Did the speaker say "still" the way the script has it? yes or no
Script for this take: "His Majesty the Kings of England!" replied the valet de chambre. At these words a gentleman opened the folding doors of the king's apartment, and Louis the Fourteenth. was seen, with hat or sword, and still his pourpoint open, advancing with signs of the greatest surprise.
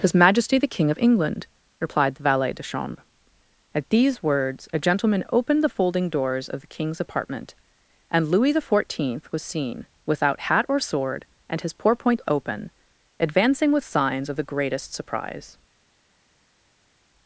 no